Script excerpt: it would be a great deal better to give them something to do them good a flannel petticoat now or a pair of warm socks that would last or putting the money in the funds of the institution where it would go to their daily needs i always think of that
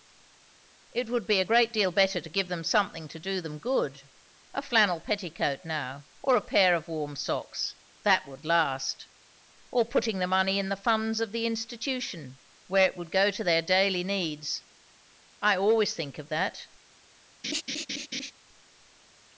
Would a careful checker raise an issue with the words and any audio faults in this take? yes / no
yes